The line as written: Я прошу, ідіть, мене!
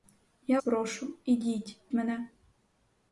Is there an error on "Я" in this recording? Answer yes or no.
no